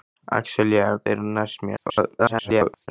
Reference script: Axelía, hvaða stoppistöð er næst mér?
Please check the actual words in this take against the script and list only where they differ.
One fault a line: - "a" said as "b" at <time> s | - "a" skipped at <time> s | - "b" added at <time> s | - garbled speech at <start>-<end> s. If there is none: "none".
- "hvaða stoppistöð" skipped at 0.9 s
- garbled speech at 1.8-2.9 s